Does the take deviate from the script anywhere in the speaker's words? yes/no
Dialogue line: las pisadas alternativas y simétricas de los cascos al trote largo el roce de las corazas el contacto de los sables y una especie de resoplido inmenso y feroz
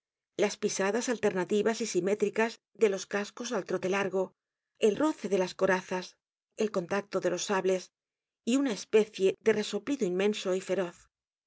no